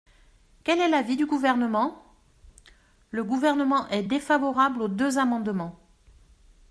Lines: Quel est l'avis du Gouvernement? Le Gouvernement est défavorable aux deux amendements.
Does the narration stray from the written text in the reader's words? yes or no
no